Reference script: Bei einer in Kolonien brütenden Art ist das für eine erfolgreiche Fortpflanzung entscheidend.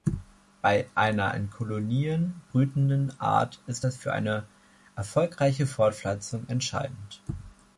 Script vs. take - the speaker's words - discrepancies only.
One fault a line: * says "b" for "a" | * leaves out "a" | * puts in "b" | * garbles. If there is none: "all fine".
all fine